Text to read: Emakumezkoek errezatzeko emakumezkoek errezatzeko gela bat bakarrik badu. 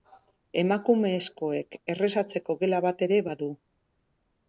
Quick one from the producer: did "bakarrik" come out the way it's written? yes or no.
no